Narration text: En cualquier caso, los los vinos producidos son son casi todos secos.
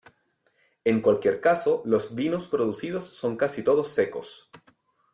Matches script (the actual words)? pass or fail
fail